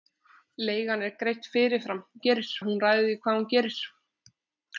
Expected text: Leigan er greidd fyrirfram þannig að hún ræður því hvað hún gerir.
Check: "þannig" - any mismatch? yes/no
yes